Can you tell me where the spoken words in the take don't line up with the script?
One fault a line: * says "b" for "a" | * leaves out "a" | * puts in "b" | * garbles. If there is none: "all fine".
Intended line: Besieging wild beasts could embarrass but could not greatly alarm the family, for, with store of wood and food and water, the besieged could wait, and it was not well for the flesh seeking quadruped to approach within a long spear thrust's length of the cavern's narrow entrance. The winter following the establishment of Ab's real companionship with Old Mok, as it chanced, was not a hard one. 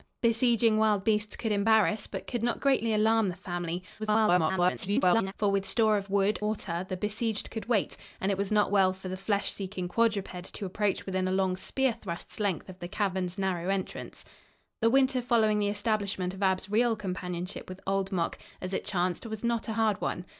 * garbles
* leaves out "and food and"